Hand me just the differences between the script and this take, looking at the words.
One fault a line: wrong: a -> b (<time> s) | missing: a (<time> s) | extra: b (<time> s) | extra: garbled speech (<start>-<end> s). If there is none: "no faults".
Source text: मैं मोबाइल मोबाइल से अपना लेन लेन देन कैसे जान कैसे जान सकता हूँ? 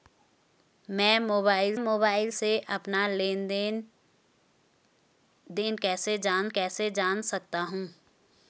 no faults